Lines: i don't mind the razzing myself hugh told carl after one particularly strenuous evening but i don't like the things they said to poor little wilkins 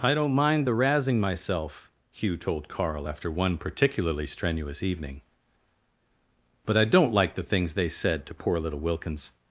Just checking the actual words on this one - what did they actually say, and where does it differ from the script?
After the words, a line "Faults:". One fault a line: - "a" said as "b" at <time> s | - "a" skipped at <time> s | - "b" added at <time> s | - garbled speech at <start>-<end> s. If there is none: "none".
i don't mind the razzing myself hugh told carl after one particularly strenuous evening but i don't like the things they said to poor little wilkins
Faults:
none